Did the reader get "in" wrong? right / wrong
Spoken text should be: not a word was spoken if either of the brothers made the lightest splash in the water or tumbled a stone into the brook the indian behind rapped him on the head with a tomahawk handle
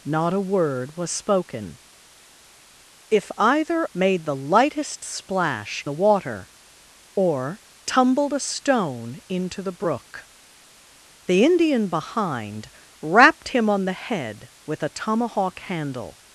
wrong